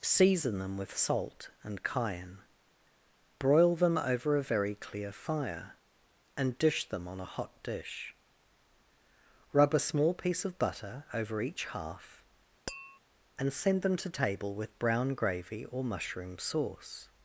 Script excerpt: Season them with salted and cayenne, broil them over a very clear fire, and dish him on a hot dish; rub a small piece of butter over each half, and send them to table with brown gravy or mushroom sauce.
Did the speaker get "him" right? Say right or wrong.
wrong